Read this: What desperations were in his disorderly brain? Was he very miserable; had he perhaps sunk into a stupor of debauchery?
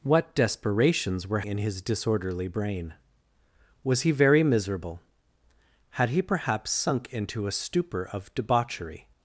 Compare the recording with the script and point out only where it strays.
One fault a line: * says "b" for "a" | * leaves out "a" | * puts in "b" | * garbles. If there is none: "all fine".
all fine